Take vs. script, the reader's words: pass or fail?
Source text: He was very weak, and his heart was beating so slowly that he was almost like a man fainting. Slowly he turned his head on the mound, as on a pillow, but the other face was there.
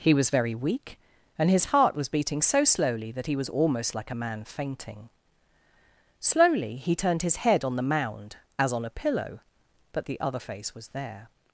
pass